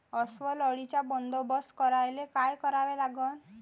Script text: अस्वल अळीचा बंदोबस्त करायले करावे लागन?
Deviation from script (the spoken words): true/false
true